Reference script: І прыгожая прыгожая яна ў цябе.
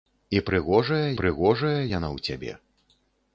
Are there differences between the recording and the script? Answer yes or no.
no